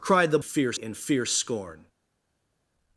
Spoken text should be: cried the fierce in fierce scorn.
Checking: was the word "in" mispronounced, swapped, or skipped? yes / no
no